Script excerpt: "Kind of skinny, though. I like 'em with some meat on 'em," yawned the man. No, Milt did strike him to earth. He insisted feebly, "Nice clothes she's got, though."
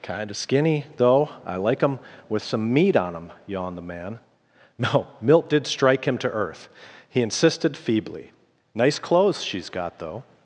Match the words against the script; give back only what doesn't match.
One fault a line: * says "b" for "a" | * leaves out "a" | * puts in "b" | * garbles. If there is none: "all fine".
all fine